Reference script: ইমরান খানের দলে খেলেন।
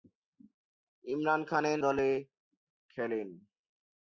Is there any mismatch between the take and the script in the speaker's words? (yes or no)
no